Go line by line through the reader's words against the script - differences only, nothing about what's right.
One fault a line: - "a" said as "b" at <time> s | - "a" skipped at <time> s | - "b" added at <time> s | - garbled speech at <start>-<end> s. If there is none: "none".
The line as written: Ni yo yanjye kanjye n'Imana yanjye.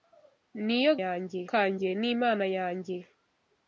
none